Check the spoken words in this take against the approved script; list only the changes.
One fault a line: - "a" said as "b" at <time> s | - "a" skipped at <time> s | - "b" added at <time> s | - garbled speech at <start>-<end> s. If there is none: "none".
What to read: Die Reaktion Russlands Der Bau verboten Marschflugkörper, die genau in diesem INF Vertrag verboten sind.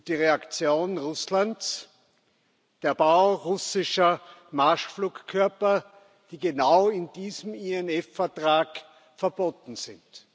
- "verboten" said as "russischer" at 3.3 s